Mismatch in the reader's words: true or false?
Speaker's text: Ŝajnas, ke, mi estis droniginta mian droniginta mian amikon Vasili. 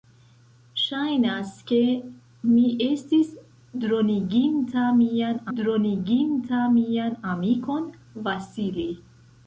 false